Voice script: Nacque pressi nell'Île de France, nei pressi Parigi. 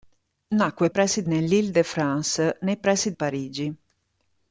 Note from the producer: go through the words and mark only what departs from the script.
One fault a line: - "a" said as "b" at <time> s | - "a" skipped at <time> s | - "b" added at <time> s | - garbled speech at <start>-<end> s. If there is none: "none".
none